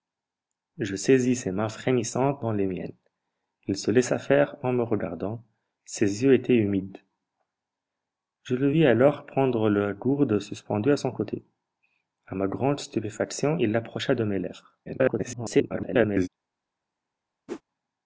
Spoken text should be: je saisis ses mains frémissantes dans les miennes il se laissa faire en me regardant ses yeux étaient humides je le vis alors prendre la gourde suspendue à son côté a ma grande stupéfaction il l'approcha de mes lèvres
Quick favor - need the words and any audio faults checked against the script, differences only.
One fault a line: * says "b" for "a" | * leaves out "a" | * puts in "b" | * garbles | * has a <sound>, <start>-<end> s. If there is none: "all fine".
* garbles
* has a whoosh, 17.5-17.6 s